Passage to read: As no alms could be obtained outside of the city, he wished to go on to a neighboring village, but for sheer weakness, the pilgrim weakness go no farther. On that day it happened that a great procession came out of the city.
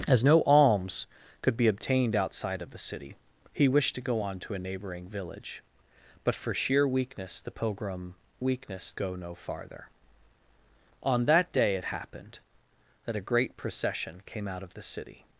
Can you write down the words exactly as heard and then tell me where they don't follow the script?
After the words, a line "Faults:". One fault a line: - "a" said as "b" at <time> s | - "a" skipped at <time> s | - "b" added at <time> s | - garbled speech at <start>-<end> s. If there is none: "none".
As no alms could be obtained outside of the city, he wished to go on to a neighboring village, but for sheer weakness, the pilgrim weakness go no farther. On that day it happened that a great procession came out of the city.
Faults:
none